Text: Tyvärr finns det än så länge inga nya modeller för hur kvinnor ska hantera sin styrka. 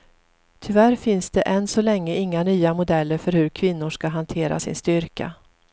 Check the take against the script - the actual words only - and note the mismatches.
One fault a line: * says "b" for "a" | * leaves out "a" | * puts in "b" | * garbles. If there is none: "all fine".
all fine